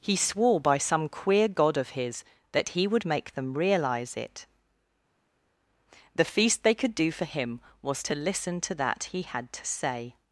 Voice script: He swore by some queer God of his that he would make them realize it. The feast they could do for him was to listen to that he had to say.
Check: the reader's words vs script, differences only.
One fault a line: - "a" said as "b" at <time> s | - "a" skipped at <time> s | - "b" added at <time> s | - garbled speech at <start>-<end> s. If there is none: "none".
none